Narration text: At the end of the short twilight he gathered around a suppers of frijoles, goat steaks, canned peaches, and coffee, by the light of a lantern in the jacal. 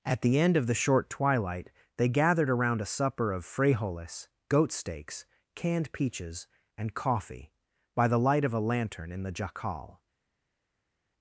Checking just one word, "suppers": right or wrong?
wrong